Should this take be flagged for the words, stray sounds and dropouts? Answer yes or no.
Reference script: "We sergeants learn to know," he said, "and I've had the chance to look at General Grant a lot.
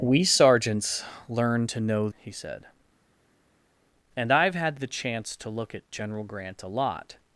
no